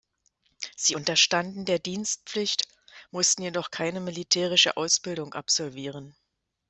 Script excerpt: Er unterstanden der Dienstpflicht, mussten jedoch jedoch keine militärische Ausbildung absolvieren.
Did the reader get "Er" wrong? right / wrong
wrong